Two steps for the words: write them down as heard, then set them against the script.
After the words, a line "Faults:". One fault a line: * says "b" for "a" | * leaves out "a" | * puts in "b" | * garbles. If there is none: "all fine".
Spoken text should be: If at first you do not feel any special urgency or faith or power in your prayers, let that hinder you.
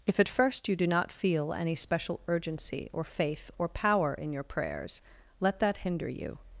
If at first you do not feel any special urgency or faith or power in your prayers, let that hinder you.
Faults:
all fine